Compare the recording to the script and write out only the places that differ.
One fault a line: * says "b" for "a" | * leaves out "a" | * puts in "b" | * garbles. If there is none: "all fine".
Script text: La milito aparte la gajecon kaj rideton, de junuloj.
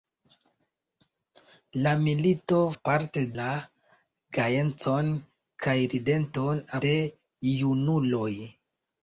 all fine